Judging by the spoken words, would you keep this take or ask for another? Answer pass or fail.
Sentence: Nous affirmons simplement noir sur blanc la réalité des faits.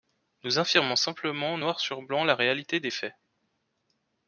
pass